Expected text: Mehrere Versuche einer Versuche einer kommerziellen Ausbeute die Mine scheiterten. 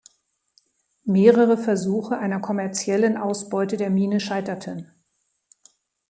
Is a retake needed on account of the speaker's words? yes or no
yes